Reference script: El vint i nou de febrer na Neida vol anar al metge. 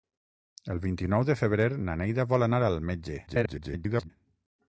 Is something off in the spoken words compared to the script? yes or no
yes